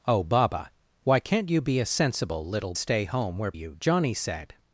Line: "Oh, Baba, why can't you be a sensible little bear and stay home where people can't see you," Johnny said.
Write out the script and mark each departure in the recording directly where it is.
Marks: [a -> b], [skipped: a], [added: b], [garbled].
"Oh, Baba, why can't you be a sensible little [skipped: bear and] stay home where [skipped: people can't see] you," Johnny said.